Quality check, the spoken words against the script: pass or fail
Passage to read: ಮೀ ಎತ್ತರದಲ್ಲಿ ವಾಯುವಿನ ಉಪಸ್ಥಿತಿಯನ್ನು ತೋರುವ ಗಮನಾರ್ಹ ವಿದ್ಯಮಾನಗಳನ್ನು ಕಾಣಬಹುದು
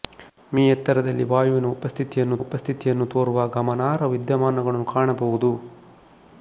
fail